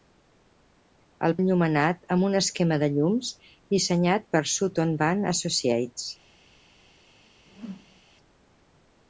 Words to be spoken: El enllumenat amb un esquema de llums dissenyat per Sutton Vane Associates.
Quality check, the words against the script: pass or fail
pass